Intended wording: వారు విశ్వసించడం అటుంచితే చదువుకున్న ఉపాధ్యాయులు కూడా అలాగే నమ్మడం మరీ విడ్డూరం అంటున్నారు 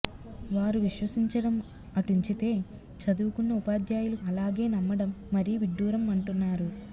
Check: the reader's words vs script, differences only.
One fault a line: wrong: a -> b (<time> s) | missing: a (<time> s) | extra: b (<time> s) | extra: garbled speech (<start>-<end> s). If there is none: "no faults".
missing: కూడా (4.2 s)